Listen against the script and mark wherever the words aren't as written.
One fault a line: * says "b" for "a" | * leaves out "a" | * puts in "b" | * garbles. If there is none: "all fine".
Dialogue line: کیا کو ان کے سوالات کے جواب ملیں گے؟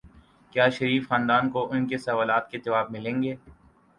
* puts in "شریف خاندان"